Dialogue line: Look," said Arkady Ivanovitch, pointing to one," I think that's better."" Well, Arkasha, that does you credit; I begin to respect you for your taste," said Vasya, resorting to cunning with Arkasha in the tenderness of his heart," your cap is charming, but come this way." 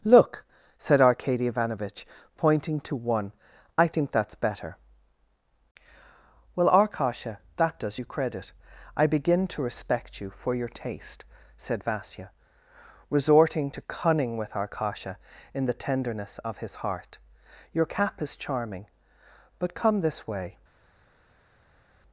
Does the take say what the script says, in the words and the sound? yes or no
yes